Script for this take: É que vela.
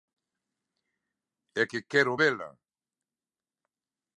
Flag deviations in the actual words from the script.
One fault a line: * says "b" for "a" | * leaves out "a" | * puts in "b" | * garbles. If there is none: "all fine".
* puts in "quero"